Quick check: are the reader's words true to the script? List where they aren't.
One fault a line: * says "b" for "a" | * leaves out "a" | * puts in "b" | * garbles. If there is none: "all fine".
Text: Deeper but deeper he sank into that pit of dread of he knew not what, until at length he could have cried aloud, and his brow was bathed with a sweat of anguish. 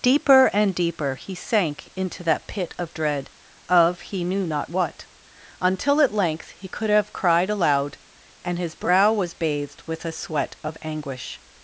* says "and" for "but"